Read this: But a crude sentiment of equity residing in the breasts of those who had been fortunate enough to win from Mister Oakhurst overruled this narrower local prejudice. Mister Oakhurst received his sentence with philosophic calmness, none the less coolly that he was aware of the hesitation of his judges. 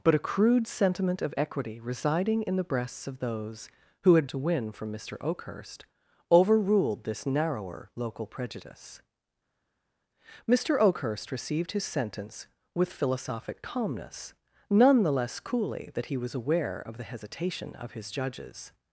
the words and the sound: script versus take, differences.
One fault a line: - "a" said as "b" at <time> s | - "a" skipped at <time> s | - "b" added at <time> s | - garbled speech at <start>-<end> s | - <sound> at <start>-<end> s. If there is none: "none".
- "been fortunate enough" skipped at 4.3 s